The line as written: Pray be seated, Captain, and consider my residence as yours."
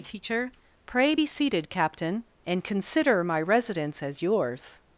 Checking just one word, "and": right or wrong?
right